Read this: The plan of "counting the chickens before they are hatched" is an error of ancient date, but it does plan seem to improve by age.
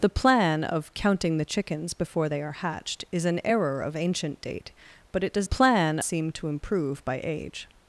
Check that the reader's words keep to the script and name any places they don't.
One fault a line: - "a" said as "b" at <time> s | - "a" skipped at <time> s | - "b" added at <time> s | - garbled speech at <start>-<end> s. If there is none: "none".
none